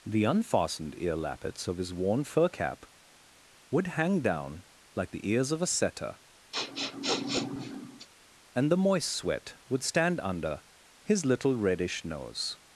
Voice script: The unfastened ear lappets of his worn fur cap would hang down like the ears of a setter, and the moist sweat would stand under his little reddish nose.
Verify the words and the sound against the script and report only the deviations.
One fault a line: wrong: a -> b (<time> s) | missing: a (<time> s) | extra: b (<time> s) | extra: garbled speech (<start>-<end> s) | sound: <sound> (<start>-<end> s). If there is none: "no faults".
sound: sniff (6.5-8.1 s)